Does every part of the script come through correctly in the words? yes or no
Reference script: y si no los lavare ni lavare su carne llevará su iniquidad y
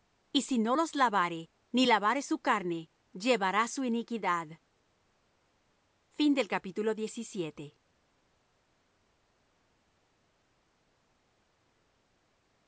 yes